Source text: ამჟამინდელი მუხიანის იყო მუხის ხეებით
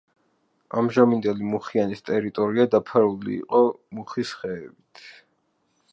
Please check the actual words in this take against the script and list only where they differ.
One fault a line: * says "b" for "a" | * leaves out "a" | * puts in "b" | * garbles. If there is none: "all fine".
* puts in "ტერიტორია დაფარული"